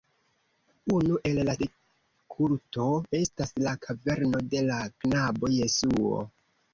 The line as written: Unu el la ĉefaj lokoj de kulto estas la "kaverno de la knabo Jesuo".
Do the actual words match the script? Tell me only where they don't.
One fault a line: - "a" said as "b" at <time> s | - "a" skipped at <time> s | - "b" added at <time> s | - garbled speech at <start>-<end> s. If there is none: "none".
- "ĉefaj lokoj" skipped at 1.5 s